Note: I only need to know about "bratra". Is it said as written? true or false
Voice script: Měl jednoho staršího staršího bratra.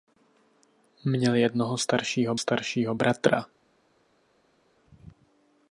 true